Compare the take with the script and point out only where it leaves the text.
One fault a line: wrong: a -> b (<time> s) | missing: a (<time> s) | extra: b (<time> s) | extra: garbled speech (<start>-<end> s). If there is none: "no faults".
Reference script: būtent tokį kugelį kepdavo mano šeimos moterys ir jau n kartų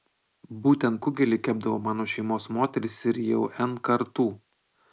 missing: tokį (1.0 s)